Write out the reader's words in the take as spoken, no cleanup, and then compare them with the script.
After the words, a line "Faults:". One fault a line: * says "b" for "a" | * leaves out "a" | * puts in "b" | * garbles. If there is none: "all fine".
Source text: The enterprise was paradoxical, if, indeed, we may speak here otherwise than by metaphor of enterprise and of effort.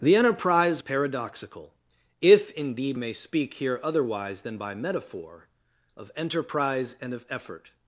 The enterprise paradoxical, if, indeed, may speak here otherwise than by metaphor of enterprise and of effort.
Faults:
* leaves out "was"
* leaves out "we"